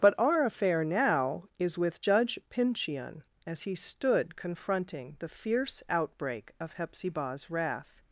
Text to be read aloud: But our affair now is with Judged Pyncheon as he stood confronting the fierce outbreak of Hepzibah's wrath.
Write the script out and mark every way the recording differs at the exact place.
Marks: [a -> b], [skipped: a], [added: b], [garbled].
But our affair now is with [Judged -> Judge] Pyncheon as he stood confronting the fierce outbreak of Hepzibah's wrath.